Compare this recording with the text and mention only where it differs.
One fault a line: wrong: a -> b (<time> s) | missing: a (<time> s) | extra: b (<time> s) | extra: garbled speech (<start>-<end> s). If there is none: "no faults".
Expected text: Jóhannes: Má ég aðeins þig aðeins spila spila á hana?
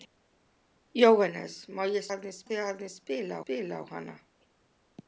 no faults